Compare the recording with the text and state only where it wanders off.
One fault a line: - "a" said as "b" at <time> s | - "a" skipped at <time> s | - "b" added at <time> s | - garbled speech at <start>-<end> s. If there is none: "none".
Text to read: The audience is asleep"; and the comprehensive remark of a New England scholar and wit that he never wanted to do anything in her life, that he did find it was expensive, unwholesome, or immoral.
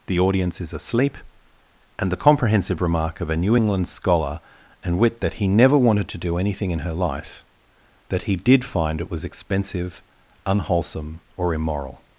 none